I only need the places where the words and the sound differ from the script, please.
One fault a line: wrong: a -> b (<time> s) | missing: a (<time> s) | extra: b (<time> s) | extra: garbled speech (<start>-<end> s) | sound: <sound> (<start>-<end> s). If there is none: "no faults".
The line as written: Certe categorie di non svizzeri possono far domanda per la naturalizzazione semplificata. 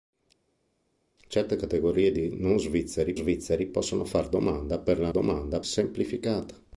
extra: svizzeri (3.1 s)
wrong: naturalizzazione -> domanda (5.1 s)